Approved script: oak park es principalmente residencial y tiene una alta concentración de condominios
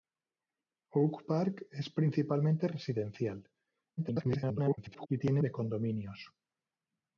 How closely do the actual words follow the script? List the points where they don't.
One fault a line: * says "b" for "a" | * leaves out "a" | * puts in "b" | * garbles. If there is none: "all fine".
* garbles
* leaves out "una alta concentración"